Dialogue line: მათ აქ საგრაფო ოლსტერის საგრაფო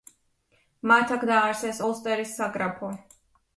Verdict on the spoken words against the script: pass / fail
fail